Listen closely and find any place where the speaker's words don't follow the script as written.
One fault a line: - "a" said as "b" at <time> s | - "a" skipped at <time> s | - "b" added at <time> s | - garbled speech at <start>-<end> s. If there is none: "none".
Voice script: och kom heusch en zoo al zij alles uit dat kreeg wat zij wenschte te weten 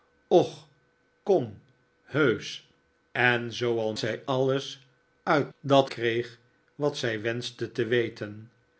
none